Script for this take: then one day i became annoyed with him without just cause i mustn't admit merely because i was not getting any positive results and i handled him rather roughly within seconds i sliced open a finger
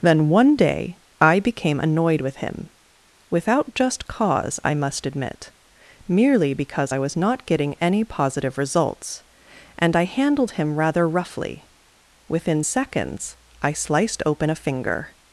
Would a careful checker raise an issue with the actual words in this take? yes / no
yes